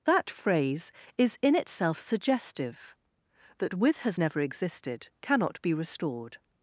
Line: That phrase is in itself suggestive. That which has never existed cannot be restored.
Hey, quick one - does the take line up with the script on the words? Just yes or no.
no